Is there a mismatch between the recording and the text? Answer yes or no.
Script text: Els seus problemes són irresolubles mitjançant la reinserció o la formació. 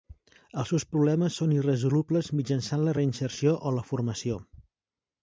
no